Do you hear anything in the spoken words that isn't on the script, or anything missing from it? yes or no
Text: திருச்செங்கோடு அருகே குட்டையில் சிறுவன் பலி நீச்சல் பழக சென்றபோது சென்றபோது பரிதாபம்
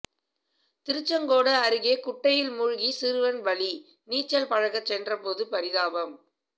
yes